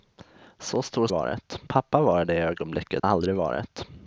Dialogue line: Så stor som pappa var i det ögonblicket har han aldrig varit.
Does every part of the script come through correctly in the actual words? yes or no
no